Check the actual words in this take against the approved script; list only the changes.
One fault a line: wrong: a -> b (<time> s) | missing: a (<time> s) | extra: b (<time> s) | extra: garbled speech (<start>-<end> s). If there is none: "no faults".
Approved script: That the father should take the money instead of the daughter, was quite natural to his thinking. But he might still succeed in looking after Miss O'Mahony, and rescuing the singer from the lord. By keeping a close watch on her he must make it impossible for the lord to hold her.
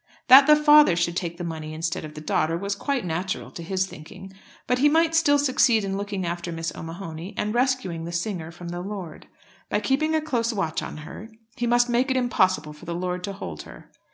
no faults